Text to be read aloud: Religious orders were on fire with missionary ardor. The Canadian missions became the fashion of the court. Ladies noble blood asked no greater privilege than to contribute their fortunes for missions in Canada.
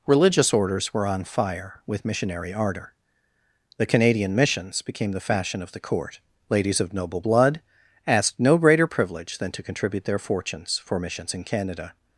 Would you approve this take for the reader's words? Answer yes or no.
no